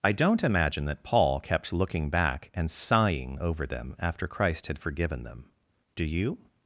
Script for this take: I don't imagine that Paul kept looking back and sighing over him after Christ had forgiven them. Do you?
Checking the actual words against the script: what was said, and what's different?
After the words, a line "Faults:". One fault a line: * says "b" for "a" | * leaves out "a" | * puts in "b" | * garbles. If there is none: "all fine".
I don't imagine that Paul kept looking back and sighing over them after Christ had forgiven them. Do you?
Faults:
* says "them" for "him"